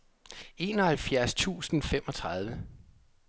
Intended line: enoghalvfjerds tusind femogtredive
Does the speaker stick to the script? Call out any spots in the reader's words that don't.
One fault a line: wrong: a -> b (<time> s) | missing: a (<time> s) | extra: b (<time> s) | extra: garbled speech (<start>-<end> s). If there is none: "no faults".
no faults